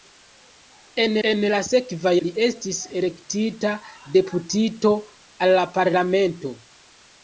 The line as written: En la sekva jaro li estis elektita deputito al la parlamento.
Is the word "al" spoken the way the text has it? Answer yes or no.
yes